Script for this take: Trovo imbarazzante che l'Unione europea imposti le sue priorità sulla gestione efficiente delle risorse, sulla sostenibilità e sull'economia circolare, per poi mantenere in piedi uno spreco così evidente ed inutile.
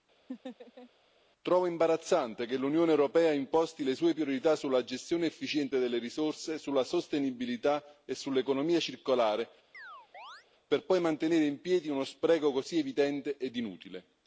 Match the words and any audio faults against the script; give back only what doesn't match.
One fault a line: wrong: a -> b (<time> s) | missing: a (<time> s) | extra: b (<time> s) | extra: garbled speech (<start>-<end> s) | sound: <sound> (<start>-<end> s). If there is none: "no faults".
sound: laugh (0.3-0.9 s)
sound: chirp (9.7-10.5 s)